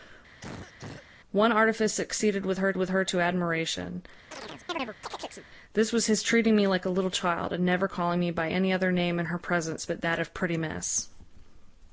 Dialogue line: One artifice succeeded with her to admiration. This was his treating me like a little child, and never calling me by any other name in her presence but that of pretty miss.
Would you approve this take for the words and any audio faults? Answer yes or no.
no